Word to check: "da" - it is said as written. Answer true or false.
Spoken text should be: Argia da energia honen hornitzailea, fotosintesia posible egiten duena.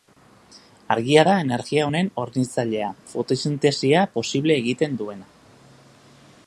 true